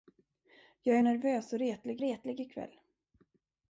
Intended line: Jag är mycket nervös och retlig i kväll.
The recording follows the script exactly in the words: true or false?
false